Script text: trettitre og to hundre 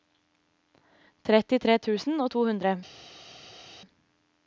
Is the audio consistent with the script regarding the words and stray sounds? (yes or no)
no